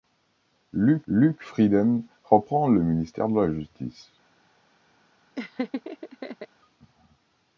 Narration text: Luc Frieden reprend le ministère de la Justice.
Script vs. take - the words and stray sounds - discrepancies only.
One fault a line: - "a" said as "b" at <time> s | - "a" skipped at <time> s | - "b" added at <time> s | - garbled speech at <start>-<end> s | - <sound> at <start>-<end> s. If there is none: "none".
- "luc" added at 1.1 s
- laugh at 5.3-6.5 s